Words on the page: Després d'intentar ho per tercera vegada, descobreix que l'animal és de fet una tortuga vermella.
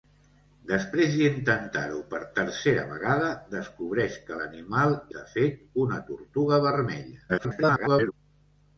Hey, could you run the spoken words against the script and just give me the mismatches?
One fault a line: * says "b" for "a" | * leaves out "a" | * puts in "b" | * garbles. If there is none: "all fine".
* leaves out "és"
* garbles